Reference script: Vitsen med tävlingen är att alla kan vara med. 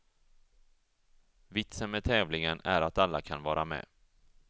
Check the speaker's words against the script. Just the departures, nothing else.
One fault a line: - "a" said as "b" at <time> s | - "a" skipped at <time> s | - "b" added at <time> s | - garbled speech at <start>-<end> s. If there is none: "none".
none